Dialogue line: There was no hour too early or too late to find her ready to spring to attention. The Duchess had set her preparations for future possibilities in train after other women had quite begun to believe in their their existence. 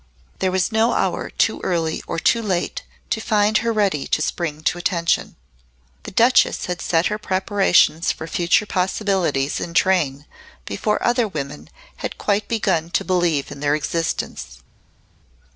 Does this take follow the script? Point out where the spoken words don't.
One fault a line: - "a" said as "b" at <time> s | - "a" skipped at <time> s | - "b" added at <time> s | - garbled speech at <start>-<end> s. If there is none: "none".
- "after" said as "before" at 10.7 s
- "their" skipped at 13.8 s